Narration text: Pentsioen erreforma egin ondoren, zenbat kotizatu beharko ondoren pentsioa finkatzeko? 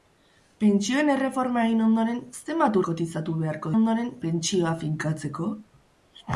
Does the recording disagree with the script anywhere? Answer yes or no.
no